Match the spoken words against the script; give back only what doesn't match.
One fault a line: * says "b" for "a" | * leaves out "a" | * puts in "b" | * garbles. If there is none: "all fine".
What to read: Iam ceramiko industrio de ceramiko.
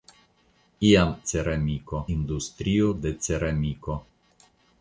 all fine